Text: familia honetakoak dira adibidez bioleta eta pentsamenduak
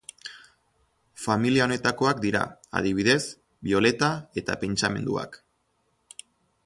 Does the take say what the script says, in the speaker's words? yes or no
yes